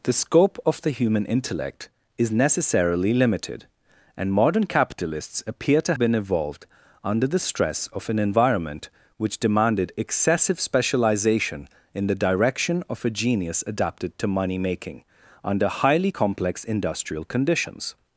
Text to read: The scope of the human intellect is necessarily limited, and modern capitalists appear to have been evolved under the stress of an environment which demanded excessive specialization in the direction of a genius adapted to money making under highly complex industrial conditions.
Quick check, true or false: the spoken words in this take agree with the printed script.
false